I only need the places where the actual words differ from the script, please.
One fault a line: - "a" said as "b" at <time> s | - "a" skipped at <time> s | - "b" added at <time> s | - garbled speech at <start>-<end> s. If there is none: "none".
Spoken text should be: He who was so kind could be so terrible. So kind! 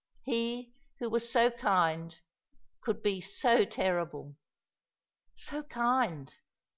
none